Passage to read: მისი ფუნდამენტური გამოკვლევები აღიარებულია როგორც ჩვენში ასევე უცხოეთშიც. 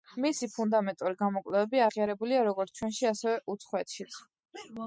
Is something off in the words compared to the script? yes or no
no